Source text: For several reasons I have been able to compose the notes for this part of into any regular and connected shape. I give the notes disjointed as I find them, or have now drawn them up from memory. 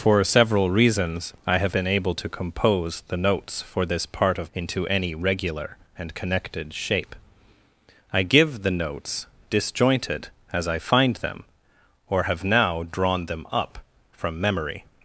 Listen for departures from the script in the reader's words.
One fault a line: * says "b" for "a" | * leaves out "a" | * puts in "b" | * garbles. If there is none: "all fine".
all fine